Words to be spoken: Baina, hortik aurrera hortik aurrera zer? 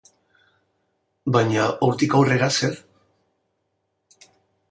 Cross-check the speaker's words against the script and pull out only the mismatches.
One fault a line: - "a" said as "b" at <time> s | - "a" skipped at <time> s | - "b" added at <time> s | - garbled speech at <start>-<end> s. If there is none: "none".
- "hortik aurrera" skipped at 2.5 s